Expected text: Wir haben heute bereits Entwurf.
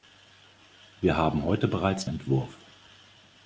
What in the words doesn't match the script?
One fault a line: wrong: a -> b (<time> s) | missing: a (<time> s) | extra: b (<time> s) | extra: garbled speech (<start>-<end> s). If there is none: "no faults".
no faults